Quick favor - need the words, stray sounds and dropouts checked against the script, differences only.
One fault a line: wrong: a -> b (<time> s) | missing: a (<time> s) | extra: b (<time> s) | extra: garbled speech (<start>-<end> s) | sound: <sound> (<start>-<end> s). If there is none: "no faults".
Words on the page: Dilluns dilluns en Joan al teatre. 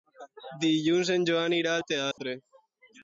missing: dilluns (1.1 s)
extra: irà (1.6 s)
sound: dropout (2.1-2.2 s)